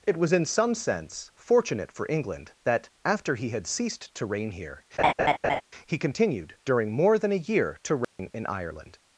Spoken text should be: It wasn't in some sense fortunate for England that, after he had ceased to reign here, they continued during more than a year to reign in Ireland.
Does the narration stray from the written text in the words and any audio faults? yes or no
yes